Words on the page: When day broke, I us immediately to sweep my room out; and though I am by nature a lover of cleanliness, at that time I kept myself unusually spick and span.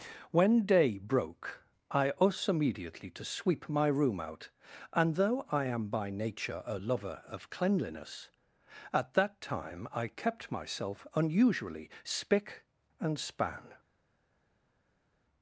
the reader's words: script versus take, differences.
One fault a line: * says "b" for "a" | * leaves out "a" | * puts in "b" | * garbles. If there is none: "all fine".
all fine